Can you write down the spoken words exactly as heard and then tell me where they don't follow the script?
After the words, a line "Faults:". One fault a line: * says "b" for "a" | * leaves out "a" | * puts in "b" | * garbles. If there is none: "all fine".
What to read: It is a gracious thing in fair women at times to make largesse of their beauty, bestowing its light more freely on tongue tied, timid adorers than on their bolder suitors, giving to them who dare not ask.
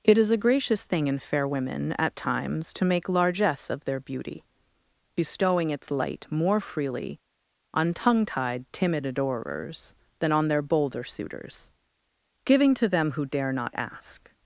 It is a gracious thing in fair women at times to make largesse of their beauty, bestowing its light more freely on tongue tied, timid adorers than on their bolder suitors, giving to them who dare not ask.
Faults:
all fine